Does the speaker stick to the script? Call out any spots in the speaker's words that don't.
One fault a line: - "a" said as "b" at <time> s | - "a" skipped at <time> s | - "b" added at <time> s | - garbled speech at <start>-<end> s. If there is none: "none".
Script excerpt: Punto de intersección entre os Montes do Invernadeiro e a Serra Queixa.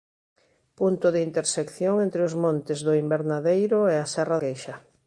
none